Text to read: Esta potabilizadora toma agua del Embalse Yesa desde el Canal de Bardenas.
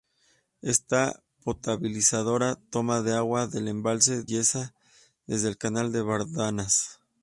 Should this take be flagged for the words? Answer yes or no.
no